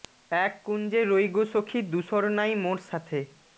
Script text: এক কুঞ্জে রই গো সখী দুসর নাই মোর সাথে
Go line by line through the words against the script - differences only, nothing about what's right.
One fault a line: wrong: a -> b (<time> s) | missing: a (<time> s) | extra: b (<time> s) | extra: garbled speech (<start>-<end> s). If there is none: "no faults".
no faults